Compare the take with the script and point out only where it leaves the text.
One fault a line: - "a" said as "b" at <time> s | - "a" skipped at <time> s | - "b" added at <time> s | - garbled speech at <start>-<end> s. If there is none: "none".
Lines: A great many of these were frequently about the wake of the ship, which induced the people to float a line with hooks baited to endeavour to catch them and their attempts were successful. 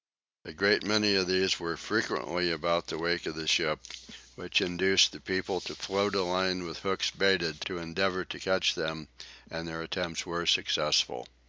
none